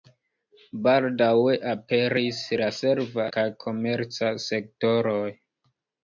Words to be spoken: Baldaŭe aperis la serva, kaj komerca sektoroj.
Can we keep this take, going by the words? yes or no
yes